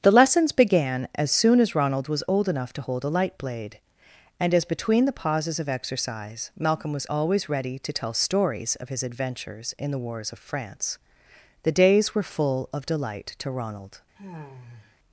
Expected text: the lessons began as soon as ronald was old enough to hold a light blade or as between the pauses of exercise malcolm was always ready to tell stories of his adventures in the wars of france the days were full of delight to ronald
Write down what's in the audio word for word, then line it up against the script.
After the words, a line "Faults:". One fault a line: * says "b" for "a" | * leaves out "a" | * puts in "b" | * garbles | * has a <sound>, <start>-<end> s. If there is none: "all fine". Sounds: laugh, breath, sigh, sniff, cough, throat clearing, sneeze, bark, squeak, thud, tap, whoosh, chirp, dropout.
the lessons began as soon as ronald was old enough to hold a light blade and as between the pauses of exercise malcolm was always ready to tell stories of his adventures in the wars of france the days were full of delight to ronald
Faults:
* says "and" for "or"
* has a sigh, 14.2-15.0 s